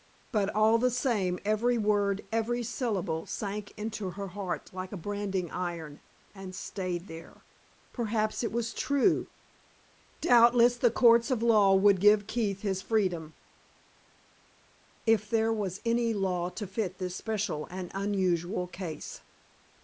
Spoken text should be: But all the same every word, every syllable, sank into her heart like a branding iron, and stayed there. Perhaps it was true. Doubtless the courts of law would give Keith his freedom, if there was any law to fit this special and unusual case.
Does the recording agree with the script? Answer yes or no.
yes